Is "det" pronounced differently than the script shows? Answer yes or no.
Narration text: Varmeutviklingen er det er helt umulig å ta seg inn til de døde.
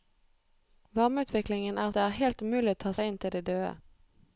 no